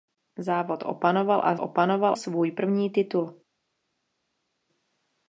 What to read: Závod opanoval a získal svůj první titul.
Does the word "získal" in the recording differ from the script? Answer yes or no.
yes